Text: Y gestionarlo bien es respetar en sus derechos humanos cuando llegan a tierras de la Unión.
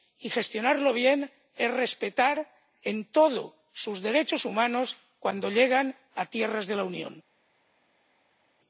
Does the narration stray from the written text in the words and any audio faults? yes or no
yes